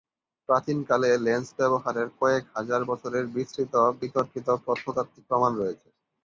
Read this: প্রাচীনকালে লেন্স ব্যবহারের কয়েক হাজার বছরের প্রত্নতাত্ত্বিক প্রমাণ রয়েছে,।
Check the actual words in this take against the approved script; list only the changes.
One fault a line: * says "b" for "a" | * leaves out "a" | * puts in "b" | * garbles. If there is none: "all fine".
* puts in "বিস্তৃত বিতর্কিত"